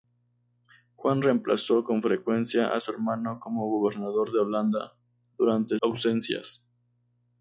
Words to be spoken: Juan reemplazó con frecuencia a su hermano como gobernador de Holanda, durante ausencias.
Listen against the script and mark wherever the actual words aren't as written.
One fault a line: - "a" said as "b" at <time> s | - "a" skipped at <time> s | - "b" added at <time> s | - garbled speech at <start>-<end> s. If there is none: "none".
none